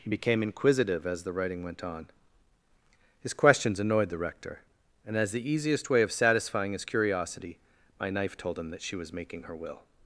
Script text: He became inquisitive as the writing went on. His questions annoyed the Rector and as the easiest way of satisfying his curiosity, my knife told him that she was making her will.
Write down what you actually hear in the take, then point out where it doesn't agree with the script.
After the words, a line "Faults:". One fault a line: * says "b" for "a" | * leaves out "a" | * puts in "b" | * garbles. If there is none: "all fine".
He became inquisitive as the writing went on. His questions annoyed the Rector and as the easiest way of satisfying his curiosity, my knife told him that she was making her will.
Faults:
all fine